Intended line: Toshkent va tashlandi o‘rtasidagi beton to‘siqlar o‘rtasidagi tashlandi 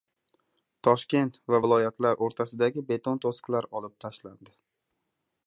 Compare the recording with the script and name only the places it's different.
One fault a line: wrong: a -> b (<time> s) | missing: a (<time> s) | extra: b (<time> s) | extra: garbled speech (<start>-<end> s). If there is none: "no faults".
wrong: tashlandi -> viloyatlar (1.6 s)
wrong: o‘rtasidagi -> olib (3.8 s)